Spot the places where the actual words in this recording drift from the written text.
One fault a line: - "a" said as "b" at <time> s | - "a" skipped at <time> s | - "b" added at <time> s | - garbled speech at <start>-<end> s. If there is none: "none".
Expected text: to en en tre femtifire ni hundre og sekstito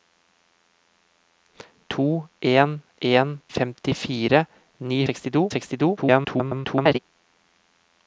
- "tre" skipped at 3.4 s
- "hundre" said as "sekstito" at 5.1 s
- garbled speech at 6.0-7.0 s